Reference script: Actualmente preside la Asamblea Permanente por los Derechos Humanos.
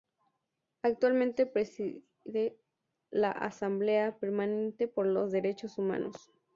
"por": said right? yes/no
yes